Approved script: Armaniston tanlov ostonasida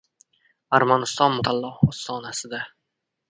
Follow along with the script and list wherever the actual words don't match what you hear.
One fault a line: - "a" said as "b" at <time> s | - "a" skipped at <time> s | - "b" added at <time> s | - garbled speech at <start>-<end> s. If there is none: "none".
none